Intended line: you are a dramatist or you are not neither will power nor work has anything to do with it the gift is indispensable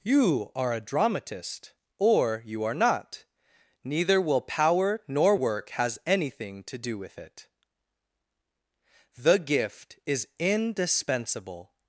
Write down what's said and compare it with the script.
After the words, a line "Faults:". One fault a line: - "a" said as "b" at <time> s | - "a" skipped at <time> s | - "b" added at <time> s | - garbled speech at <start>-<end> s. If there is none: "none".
you are a dramatist or you are not neither will power nor work has anything to do with it the gift is indispensable
Faults:
none